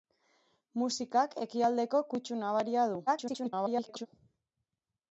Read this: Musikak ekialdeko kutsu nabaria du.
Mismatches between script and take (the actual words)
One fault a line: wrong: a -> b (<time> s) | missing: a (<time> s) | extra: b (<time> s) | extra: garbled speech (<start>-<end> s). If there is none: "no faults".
extra: garbled speech (3.1-4.1 s)